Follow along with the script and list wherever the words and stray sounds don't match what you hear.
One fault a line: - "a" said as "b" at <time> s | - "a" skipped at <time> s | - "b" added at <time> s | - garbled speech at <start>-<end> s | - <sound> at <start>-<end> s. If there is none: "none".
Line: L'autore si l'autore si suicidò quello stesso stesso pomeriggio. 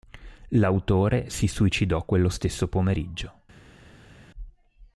- "l'autore si" skipped at 1.4 s
- "stesso" skipped at 2.7 s